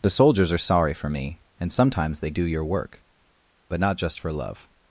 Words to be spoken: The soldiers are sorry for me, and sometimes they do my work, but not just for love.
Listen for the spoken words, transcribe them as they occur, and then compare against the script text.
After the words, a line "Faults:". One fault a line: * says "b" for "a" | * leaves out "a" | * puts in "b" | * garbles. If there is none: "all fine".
The soldiers are sorry for me, and sometimes they do your work, but not just for love.
Faults:
* says "your" for "my"